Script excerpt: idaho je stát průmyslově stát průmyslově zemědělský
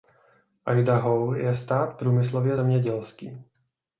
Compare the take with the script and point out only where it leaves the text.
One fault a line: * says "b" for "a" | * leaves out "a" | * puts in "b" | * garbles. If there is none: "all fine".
* leaves out "stát průmyslově"